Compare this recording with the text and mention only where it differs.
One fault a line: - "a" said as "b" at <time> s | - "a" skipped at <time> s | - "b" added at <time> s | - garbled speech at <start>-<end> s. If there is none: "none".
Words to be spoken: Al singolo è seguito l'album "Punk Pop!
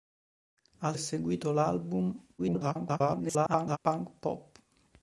- "singolo" skipped at 1.0 s
- garbled speech at 2.4-3.8 s